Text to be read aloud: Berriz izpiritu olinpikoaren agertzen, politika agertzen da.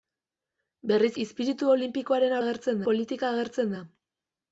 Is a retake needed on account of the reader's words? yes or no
no